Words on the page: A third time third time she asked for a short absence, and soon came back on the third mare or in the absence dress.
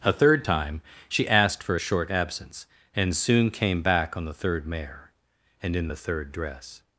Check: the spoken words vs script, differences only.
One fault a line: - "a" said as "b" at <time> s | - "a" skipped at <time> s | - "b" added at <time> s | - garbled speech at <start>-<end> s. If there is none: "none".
- "third time" skipped at 0.8 s
- "or" said as "and" at 5.6 s
- "absence" said as "third" at 6.0 s